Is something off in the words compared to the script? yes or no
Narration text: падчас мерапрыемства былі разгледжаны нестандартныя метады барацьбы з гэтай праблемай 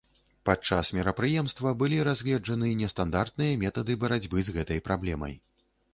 no